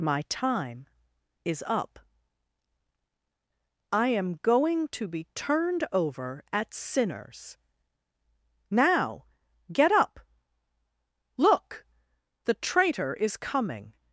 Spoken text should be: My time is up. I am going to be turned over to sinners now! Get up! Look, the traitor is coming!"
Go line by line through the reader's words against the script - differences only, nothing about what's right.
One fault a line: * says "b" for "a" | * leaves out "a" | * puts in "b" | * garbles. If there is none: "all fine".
* says "at" for "to"